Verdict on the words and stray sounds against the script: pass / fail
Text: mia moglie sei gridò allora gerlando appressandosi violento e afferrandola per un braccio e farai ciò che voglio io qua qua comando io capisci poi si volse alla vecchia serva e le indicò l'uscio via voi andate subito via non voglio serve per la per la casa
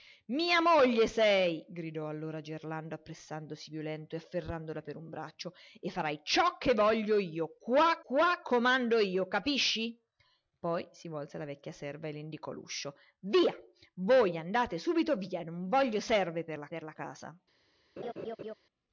fail